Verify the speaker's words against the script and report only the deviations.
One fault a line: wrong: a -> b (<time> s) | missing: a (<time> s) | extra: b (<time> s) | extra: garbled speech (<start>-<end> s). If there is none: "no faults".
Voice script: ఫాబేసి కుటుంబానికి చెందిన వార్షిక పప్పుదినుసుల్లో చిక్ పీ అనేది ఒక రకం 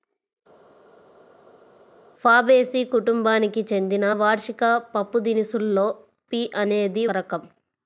missing: చిక్ (5.9 s)
missing: ఒక (7.0 s)